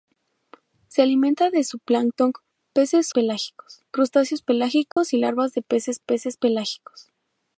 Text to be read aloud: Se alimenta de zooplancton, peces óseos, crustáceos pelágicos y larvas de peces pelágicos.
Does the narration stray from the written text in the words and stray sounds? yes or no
yes